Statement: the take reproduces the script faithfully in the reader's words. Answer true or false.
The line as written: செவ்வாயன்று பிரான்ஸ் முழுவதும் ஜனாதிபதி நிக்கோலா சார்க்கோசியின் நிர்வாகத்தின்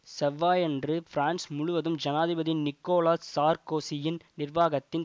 true